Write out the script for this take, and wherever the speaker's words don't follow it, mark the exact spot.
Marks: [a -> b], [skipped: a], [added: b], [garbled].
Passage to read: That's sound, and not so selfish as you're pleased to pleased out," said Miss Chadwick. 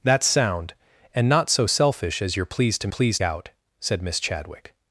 That's sound, and not so selfish as you're pleased to pleased out," said Miss Chadwick.